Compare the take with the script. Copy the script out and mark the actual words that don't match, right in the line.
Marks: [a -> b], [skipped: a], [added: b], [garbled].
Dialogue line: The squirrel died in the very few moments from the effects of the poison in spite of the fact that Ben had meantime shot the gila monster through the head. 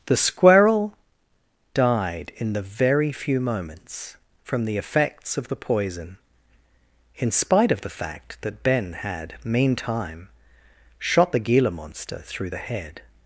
The squirrel died in the very few moments from the effects of the poison in spite of the fact that Ben had meantime shot the gila monster through the head.